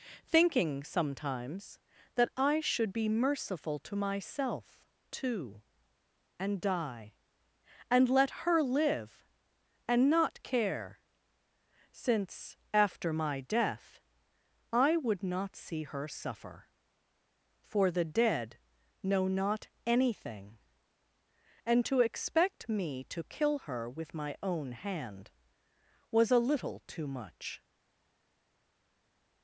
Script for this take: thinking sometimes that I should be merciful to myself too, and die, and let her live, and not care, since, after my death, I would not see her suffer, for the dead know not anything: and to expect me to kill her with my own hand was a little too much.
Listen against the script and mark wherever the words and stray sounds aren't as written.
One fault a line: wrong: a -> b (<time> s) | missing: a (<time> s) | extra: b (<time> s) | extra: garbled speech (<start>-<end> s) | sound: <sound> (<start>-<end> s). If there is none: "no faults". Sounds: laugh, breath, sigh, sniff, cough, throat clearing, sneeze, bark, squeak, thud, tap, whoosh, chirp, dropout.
no faults